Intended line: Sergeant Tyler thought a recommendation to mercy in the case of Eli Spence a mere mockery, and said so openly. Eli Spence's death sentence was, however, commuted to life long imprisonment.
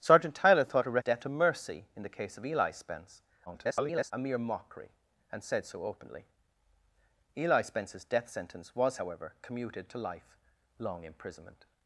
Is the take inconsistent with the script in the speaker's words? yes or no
yes